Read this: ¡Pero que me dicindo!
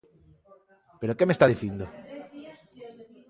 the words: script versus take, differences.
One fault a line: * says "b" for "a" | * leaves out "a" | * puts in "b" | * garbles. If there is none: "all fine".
* puts in "está"